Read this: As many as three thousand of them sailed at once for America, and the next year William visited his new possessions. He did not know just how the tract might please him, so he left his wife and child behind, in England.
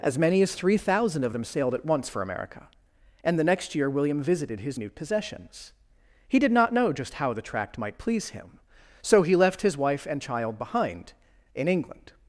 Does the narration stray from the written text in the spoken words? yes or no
no